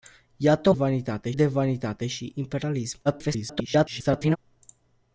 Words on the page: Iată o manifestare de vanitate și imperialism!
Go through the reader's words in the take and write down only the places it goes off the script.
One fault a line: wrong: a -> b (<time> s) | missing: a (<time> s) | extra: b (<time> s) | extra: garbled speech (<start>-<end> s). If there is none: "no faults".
wrong: manifestare -> vanitate (0.7 s)
extra: garbled speech (3.0-4.4 s)